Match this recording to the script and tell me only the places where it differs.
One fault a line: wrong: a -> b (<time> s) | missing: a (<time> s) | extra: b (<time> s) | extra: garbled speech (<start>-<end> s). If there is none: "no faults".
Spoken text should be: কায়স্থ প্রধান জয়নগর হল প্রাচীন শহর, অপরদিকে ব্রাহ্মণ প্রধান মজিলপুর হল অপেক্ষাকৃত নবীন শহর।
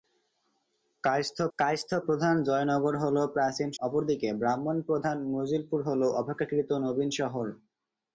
extra: কায়স্থ (1.6 s)
missing: শহর (3.7 s)